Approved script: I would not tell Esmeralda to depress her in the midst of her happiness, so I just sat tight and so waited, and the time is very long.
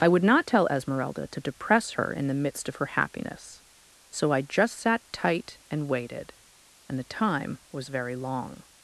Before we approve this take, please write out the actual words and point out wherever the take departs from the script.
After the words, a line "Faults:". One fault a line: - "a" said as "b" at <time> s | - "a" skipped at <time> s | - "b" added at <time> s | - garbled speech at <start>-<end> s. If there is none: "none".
I would not tell Esmeralda to depress her in the midst of her happiness, so I just sat tight and waited, and the time was very long.
Faults:
- "so" skipped at 5.9 s
- "is" said as "was" at 7.7 s